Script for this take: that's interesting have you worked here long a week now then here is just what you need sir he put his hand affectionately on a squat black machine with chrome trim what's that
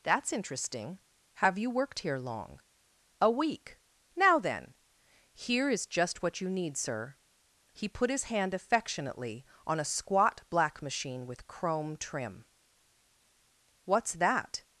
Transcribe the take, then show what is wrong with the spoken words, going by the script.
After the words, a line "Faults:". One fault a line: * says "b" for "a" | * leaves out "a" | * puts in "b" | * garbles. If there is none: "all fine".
that's interesting have you worked here long a week now then here is just what you need sir he put his hand affectionately on a squat black machine with chrome trim what's that
Faults:
all fine